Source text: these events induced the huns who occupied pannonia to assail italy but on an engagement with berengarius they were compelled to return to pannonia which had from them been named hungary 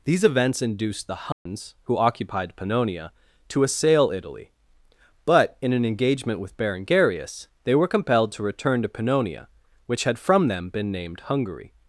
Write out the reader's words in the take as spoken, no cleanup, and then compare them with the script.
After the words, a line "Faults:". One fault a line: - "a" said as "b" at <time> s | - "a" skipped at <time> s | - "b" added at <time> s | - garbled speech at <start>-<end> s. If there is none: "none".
these events induced the huns who occupied pannonia to assail italy but in an engagement with berengarius they were compelled to return to pannonia which had from them been named hungary
Faults:
- "on" said as "in" at 5.6 s